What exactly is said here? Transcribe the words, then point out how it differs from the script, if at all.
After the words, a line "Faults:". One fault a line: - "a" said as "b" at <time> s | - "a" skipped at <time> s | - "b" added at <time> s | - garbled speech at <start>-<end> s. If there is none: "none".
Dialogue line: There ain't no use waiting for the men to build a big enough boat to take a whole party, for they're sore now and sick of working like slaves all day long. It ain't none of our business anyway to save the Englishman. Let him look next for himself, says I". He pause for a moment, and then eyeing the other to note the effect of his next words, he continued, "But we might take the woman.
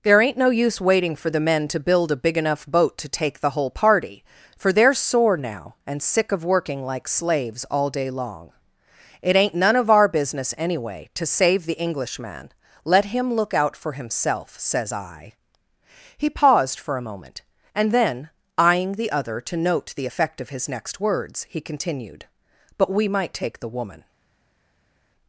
There ain't no use waiting for the men to build a big enough boat to take the whole party, for they're sore now and sick of working like slaves all day long. It ain't none of our business anyway to save the Englishman. Let him look out for himself, says I". He paused for a moment, and then eyeing the other to note the effect of his next words, he continued, "But we might take the woman.
Faults:
- "a" said as "the" at 3.4 s
- "next" said as "out" at 13.5 s
- "pause" said as "paused" at 16.3 s